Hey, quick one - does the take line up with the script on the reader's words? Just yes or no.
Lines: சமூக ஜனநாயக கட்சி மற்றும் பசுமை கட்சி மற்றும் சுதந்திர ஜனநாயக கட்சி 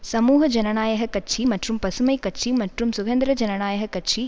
yes